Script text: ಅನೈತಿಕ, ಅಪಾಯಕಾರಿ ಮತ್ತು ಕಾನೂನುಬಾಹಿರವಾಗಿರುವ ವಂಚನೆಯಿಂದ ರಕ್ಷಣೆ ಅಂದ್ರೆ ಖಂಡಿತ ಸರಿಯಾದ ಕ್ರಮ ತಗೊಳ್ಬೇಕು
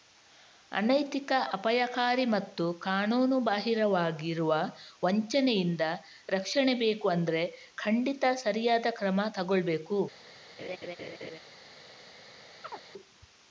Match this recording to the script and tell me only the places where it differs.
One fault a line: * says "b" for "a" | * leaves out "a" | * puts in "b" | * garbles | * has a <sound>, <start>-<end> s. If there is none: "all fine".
* puts in "ಬೇಕು"
* has a laugh, 10.6-11.4 s
* has a chirp, 12.6-12.9 s